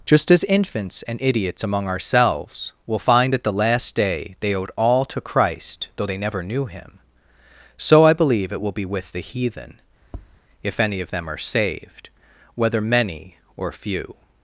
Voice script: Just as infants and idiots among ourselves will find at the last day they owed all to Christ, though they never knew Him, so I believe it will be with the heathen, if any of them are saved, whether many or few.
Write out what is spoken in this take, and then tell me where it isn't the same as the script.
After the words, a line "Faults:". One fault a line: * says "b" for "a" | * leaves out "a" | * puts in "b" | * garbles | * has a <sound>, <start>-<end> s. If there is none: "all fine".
Just as infants and idiots among ourselves will find at the last day they owed all to Christ, though they never knew Him, so I believe it will be with the heathen, if any of them are saved, whether many or few.
Faults:
* has a tap, 10.0-10.4 s